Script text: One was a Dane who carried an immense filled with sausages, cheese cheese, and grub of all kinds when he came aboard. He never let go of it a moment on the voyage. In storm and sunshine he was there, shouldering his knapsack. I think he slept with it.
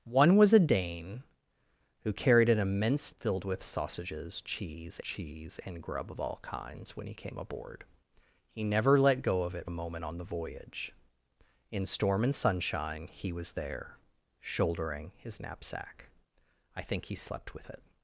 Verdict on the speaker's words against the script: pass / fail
pass